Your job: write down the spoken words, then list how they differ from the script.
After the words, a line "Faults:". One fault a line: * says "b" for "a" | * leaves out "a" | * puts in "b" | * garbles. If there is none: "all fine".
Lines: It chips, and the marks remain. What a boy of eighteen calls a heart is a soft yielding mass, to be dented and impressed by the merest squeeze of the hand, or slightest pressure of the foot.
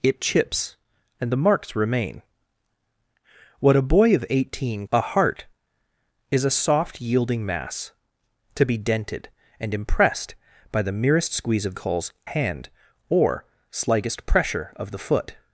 It chips, and the marks remain. What a boy of eighteen a heart is a soft yielding mass, to be dented and impressed by the merest squeeze of calls hand, or slightest pressure of the foot.
Faults:
* leaves out "calls"
* says "calls" for "the"